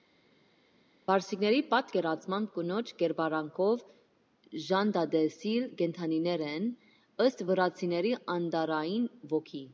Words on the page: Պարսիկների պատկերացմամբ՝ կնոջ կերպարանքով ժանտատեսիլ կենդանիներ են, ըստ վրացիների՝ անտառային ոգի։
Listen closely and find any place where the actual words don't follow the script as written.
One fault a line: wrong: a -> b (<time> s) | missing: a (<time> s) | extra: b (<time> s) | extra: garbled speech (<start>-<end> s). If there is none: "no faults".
no faults